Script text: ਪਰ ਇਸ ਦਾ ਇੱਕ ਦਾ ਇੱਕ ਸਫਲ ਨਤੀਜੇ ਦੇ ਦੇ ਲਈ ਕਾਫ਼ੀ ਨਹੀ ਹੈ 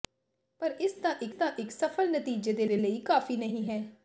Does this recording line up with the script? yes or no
yes